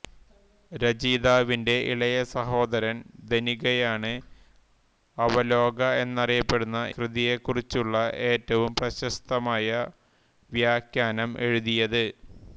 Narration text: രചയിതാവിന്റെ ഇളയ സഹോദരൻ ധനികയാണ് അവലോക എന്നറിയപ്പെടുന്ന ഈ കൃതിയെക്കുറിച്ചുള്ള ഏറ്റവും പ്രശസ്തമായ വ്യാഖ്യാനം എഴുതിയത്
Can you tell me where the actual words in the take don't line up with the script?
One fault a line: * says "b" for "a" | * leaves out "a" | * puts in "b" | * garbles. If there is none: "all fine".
* leaves out "ഈ"